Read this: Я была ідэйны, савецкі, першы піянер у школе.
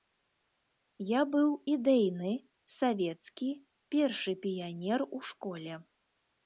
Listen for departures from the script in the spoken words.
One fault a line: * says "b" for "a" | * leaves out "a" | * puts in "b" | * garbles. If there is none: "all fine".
* says "быў" for "была"